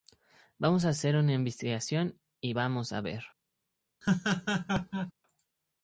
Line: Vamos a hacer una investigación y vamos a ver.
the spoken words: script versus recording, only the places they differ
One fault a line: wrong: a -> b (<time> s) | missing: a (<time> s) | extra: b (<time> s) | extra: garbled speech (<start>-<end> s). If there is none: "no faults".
no faults